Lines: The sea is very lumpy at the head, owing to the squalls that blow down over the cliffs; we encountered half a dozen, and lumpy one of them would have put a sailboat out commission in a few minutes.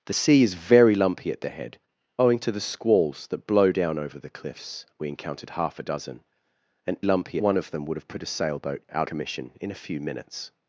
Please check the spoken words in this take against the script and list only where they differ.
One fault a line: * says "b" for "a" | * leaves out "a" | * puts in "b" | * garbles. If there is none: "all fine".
all fine